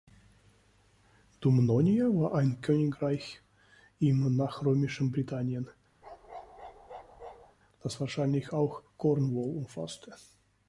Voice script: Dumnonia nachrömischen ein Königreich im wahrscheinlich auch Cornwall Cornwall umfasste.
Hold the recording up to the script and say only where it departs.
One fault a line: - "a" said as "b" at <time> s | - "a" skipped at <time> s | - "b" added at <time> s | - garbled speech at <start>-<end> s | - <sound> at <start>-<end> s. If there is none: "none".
- "nachrömischen" said as "war" at 2.0 s
- "nachrömischen Britannien das" added at 4.3 s
- bark at 6.0-7.6 s
- "Cornwall" skipped at 9.6 s